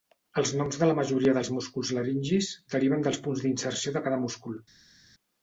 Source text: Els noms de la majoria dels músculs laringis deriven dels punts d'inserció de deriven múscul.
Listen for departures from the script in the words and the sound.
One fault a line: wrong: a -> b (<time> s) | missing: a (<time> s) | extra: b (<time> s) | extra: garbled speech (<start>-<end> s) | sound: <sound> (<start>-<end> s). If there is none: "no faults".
wrong: deriven -> cada (4.1 s)